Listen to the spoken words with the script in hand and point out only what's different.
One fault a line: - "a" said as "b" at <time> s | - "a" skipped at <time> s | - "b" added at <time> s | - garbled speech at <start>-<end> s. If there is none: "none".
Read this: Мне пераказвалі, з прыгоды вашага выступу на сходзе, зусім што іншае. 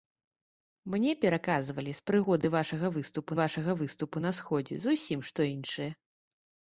- "вашага выступу" added at 3.4 s